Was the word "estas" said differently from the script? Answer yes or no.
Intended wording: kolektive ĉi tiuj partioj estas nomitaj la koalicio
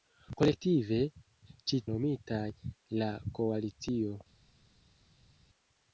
yes